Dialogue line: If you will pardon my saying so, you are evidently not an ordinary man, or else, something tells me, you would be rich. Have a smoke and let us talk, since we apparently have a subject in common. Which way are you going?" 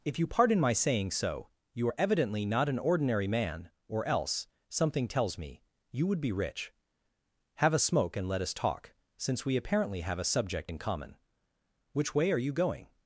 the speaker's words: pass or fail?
fail